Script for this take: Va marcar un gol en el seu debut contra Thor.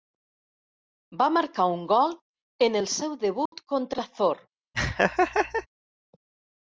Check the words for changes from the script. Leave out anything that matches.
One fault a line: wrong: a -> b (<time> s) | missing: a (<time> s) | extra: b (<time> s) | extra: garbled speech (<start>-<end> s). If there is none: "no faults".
no faults